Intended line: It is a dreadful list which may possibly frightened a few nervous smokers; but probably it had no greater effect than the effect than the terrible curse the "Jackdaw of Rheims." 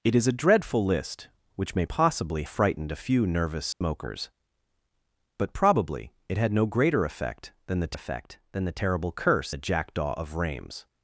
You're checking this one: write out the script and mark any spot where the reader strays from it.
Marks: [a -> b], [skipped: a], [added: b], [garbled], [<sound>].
It is a dreadful list which may possibly frightened a few nervous smokers; [dropout] but probably it had no greater effect than the effect than the terrible curse the "Jackdaw of Rheims."